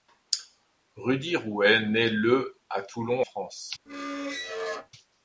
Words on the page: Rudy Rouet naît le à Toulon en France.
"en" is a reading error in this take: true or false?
true